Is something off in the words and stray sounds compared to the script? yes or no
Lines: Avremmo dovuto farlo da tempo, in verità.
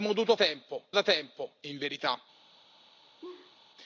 yes